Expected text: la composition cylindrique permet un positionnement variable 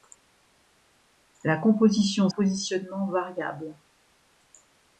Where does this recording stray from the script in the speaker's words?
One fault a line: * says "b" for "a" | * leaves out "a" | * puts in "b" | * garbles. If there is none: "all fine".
* leaves out "cylindrique permet un"